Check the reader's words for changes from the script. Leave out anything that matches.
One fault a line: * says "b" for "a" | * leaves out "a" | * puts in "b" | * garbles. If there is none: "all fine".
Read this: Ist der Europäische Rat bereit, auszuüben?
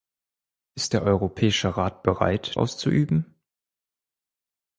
all fine